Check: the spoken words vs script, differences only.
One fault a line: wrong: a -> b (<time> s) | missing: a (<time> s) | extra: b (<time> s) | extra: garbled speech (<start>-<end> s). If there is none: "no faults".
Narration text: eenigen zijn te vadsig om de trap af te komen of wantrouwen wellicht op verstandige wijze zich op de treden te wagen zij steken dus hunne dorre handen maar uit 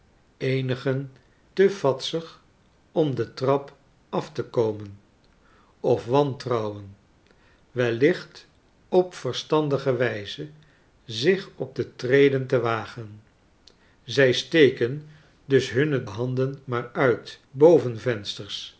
missing: zijn (1.1 s)
missing: dorre (16.0 s)